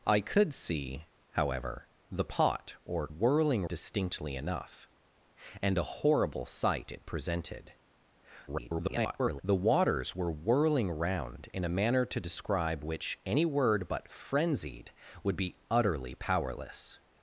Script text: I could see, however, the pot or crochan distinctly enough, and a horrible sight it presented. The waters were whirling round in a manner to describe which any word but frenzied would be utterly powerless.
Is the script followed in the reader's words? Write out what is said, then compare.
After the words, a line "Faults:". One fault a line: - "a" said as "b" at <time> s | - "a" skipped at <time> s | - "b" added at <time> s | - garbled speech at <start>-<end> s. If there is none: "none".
I could see, however, the pot or whirling distinctly enough, and a horrible sight it presented. [garbled] The waters were whirling round in a manner to describe which any word but frenzied would be utterly powerless.
Faults:
- "crochan" said as "whirling" at 3.1 s
- garbled speech at 8.5-9.4 s